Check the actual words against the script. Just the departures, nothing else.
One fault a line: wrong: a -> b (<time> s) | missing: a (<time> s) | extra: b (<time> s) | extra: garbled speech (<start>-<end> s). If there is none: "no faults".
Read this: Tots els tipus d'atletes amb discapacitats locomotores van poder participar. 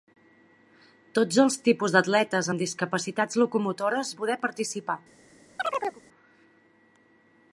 missing: van (4.1 s)